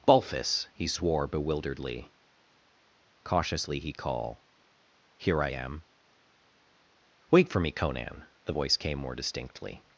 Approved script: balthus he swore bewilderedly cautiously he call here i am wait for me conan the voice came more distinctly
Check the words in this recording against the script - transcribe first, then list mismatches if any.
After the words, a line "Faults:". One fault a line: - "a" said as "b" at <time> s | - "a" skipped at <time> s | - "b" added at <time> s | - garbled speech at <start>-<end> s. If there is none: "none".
balthus he swore bewilderedly cautiously he call here i am wait for me conan the voice came more distinctly
Faults:
none